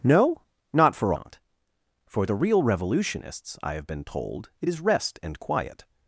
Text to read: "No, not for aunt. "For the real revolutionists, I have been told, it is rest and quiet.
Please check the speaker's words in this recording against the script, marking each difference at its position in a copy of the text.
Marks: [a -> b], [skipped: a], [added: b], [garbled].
"No, not for aunt. "For the real revolutionists, I have been told, it is rest and quiet.